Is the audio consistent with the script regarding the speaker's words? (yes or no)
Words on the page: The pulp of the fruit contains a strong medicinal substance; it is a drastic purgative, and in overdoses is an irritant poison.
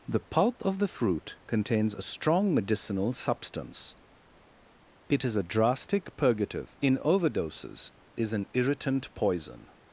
no